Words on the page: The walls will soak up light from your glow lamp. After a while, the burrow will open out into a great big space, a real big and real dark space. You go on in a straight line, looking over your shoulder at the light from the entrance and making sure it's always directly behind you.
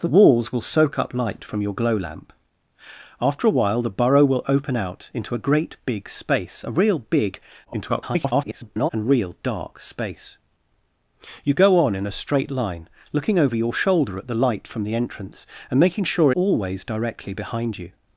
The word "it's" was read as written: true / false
false